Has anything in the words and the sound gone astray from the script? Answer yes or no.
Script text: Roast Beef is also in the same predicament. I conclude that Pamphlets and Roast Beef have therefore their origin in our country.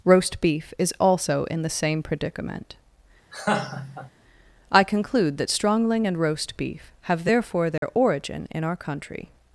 yes